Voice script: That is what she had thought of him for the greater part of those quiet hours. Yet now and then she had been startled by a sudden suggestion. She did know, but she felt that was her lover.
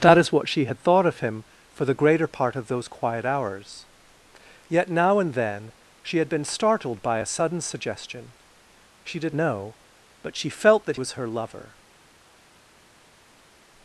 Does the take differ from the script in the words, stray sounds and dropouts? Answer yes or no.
no